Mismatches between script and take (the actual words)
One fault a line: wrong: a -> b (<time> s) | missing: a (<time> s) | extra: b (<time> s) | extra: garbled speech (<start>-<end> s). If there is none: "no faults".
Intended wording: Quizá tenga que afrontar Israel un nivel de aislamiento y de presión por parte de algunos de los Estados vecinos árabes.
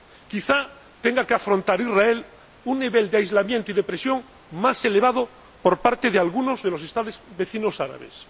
extra: más elevado (4.5 s)